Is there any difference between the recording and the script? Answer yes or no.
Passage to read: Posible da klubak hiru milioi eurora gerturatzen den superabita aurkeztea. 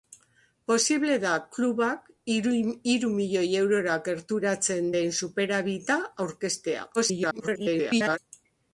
yes